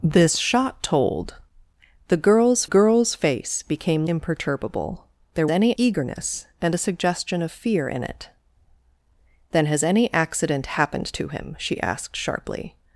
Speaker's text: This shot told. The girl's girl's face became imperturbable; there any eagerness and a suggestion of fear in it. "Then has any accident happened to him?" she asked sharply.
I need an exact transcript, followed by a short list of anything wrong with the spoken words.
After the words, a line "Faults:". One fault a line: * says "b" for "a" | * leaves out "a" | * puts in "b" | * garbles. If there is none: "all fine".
This shot told. The girl's girl's face became imperturbable; there any eagerness and a suggestion of fear in it. "Then has any accident happened to him?" she asked sharply.
Faults:
all fine